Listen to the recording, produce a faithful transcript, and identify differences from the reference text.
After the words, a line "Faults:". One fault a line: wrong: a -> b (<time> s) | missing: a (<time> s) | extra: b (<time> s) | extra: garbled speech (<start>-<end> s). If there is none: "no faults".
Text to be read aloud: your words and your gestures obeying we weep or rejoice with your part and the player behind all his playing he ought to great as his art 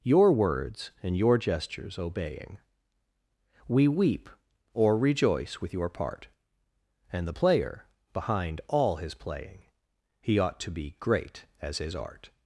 your words and your gestures obeying we weep or rejoice with your part and the player behind all his playing he ought to be great as his art
Faults:
extra: be (10.7 s)